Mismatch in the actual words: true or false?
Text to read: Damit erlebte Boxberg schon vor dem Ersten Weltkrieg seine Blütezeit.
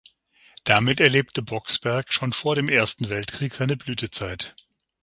false